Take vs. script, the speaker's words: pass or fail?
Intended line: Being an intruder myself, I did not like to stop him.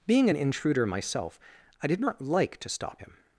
pass